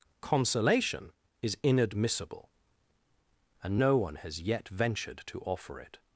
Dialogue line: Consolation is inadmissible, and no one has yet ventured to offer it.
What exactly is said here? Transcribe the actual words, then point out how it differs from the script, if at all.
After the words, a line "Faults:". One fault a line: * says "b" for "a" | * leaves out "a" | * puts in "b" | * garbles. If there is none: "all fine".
Consolation is inadmissible, and no one has yet ventured to offer it.
Faults:
all fine